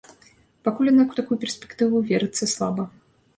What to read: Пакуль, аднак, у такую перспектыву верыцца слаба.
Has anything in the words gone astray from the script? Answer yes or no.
no